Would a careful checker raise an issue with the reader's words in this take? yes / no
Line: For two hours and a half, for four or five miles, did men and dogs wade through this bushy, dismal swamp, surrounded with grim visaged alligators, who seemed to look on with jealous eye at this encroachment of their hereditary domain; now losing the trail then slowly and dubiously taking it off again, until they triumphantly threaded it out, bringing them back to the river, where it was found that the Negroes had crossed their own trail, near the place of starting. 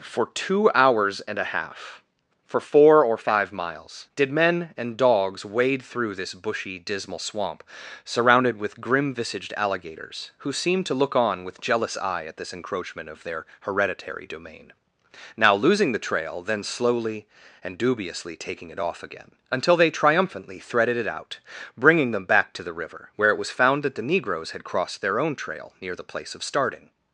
no